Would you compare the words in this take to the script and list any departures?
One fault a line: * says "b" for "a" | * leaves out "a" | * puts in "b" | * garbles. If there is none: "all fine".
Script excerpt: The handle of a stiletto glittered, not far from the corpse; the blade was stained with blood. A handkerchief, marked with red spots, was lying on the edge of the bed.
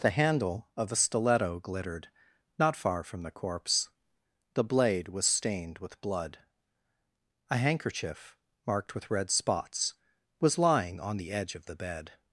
all fine